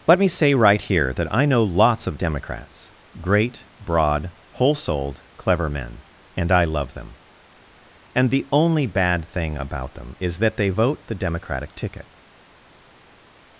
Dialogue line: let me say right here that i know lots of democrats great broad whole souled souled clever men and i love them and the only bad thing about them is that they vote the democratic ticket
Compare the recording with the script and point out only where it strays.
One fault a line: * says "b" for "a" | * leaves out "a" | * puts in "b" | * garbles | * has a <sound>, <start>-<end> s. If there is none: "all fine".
* leaves out "souled"